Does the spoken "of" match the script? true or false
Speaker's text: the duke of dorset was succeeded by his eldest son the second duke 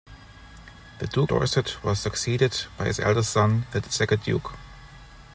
false